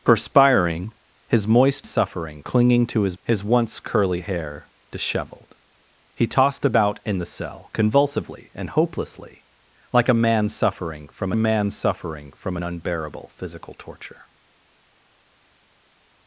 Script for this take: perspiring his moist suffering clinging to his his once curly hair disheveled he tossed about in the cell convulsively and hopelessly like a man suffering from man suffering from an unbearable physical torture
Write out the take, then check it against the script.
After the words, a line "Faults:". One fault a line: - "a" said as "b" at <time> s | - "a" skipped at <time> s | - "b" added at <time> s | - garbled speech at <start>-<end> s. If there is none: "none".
perspiring his moist suffering clinging to his his once curly hair disheveled he tossed about in the cell convulsively and hopelessly like a man suffering from man suffering from an unbearable physical torture
Faults:
none